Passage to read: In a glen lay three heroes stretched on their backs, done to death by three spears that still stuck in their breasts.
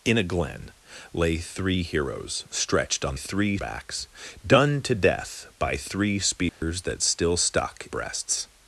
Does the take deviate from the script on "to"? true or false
false